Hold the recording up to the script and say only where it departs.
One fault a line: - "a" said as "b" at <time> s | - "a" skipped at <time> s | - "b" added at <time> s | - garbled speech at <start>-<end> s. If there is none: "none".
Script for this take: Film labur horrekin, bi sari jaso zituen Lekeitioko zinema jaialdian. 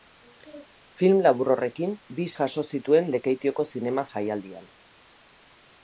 - "sari" skipped at 2.3 s